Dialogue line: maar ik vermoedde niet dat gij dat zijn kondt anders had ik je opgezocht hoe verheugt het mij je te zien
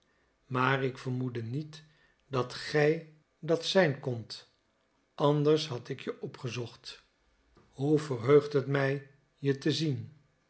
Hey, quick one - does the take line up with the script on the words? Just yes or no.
yes